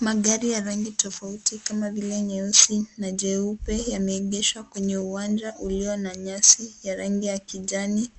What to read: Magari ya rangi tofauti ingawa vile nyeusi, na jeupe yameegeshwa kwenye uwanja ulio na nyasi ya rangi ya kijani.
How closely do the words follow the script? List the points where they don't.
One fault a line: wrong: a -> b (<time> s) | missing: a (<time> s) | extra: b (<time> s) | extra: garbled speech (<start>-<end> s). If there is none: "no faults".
wrong: ingawa -> kama (1.6 s)